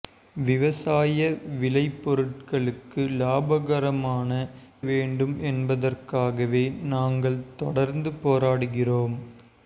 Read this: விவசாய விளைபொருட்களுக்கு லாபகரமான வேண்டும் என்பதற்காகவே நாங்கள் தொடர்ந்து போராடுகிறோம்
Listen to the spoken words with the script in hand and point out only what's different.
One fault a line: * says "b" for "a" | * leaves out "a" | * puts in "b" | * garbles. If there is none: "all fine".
all fine